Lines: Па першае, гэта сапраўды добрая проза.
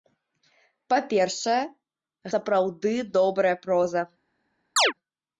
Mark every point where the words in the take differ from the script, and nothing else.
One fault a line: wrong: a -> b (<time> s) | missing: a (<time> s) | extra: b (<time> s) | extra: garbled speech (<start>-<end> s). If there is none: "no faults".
missing: гэта (1.6 s)